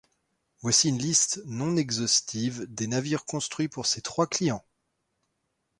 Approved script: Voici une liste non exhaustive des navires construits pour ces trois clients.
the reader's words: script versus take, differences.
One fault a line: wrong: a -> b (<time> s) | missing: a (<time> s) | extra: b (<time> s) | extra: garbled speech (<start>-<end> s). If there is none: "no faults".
no faults